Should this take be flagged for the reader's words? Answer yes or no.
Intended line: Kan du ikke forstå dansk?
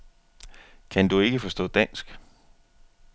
no